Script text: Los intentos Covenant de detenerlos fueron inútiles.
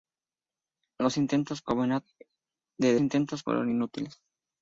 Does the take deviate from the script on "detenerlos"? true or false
true